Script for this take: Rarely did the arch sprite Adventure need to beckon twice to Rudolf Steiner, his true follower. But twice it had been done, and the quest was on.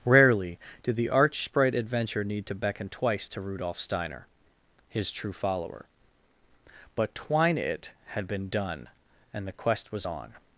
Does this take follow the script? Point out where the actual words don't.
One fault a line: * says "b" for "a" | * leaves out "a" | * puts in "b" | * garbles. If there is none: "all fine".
* says "twine" for "twice"